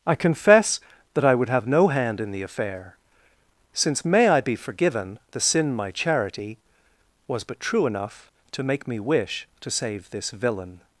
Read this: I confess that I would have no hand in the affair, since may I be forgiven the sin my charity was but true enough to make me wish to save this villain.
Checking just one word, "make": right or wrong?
right